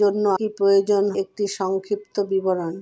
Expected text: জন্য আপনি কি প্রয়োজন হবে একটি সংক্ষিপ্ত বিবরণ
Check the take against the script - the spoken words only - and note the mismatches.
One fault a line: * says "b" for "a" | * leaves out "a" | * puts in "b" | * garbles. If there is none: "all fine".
* leaves out "আপনি"
* leaves out "হবে"